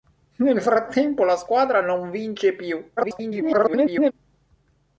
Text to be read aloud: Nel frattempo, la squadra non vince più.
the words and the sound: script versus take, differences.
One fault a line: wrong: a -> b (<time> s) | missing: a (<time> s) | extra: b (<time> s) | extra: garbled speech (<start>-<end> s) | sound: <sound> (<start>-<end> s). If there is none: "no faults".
extra: garbled speech (3.0-4.1 s)